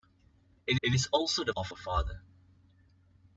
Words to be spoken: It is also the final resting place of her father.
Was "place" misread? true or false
true